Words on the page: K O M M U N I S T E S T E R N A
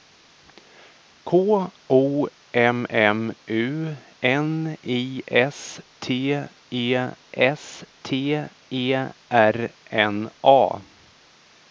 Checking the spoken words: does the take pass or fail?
pass